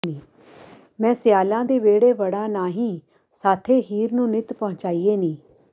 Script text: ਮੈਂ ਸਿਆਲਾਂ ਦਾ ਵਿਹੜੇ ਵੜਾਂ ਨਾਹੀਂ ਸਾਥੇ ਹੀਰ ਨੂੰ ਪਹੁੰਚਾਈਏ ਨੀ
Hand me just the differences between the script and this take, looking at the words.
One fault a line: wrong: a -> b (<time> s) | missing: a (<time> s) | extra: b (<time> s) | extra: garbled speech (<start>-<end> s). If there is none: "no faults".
wrong: ਦਾ -> ਦੇ (1.6 s)
extra: ਨਿੱਤ (4.3 s)